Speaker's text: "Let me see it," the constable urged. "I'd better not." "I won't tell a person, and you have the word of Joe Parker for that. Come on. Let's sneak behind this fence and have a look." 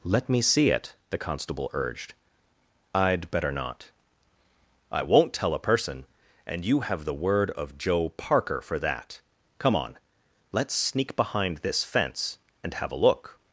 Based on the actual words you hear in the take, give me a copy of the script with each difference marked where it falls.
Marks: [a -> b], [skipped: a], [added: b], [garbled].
"Let me see it," the constable urged. "I'd better not." "I won't tell a person, and you have the word of Joe Parker for that. Come on. Let's sneak behind this fence and have a look."